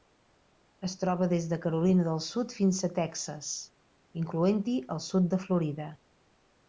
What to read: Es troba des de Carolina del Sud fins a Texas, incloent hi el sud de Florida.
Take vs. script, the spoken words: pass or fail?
pass